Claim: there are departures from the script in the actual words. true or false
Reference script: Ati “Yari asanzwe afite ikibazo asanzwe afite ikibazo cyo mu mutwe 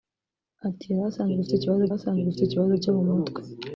false